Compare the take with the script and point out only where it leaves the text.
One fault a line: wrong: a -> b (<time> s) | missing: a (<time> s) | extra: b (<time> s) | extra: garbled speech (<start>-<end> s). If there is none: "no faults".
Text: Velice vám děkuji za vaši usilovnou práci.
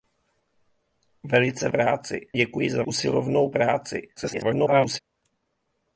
wrong: vám -> práci (1.7 s)
missing: vaši (2.8 s)
extra: garbled speech (4.2-5.0 s)